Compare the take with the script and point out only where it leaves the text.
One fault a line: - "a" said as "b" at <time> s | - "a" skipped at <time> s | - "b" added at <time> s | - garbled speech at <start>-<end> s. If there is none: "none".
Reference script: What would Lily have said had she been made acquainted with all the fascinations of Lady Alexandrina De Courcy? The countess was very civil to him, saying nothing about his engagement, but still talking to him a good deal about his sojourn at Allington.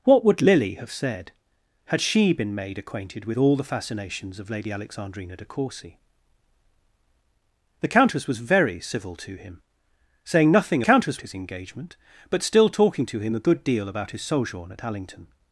- "about" said as "countess" at 10.8 s